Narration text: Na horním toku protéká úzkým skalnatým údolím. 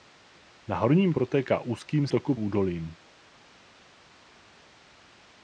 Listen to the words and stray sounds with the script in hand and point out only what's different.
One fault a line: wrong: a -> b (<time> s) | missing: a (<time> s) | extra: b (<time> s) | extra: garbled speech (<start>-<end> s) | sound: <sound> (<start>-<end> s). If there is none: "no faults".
missing: toku (1.1 s)
wrong: skalnatým -> toku (2.1 s)